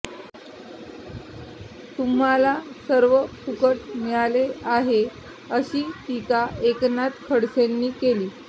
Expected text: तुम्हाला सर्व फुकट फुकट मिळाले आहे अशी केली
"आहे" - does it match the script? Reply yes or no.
yes